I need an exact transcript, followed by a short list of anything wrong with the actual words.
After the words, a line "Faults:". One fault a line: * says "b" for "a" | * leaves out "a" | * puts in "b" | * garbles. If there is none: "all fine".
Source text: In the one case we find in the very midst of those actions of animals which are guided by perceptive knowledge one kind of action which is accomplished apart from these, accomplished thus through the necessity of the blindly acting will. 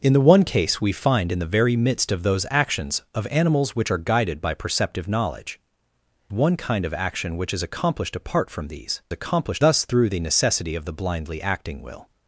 In the one case we find in the very midst of those actions of animals which are guided by perceptive knowledge one kind of action which is accomplished apart from these, accomplished thus through the necessity of the blindly acting will.
Faults:
all fine